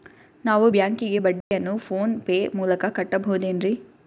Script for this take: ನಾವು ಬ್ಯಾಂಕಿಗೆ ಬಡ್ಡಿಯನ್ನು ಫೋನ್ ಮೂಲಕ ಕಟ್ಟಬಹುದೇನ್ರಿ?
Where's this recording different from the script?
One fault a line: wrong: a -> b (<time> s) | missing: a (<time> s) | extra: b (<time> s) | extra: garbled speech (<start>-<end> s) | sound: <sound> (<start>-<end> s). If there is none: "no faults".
sound: dropout (1.4-1.5 s)
extra: ಪೇ (2.2 s)